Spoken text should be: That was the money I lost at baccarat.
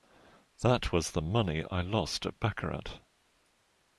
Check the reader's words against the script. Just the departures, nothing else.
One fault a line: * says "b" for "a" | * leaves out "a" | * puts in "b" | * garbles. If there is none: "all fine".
all fine